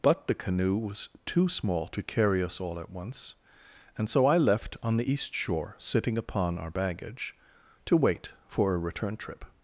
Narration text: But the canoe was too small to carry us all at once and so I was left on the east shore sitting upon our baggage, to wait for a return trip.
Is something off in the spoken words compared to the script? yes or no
yes